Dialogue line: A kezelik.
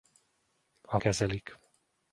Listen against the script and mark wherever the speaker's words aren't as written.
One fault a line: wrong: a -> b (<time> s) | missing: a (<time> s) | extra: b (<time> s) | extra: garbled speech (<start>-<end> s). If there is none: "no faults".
no faults